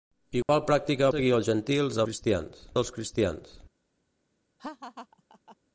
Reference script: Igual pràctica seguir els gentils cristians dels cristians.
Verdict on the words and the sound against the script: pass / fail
fail